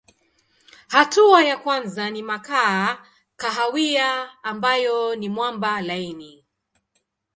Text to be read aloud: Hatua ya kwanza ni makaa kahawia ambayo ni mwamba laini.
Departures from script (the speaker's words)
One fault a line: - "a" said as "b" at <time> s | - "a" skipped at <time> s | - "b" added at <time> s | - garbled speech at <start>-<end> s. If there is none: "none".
none